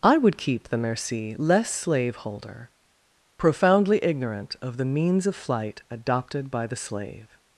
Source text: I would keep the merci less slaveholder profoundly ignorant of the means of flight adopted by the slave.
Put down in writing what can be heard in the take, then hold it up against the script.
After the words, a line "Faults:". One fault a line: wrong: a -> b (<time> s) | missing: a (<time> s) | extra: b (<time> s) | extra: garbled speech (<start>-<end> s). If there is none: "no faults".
I would keep the merci less slaveholder profoundly ignorant of the means of flight adopted by the slave.
Faults:
no faults